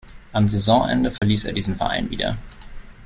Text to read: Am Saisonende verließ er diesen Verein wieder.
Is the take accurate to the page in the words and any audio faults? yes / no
no